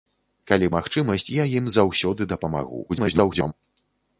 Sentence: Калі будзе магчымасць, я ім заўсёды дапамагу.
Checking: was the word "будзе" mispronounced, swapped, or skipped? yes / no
yes